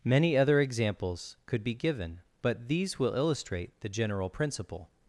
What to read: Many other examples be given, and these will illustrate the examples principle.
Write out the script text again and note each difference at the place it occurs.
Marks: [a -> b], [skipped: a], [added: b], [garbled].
Many other examples [added: could] be given, [and -> but] these will illustrate the [examples -> general] principle.